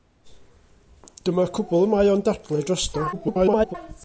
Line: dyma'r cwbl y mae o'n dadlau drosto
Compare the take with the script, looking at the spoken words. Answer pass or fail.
fail